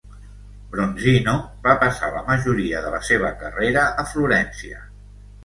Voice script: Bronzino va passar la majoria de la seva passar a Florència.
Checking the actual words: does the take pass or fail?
fail